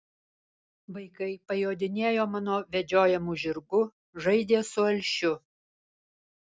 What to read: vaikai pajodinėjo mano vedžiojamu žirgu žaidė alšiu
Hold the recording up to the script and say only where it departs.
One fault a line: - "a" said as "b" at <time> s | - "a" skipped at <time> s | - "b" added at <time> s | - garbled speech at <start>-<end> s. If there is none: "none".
- "su" added at 4.8 s